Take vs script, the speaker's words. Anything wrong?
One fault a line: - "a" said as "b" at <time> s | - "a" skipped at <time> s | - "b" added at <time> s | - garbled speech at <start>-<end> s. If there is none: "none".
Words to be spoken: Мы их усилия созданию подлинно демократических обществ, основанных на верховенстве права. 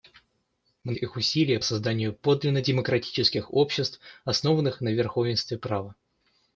none